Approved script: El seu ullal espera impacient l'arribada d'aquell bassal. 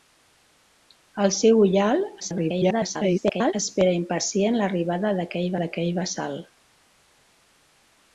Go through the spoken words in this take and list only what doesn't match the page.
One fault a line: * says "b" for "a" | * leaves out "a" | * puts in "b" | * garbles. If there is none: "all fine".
* garbles
* puts in "d'aquell"